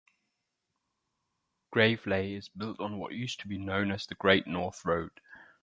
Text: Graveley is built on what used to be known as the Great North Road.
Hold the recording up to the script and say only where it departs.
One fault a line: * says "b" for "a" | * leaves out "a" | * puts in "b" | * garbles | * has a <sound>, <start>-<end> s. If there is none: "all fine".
all fine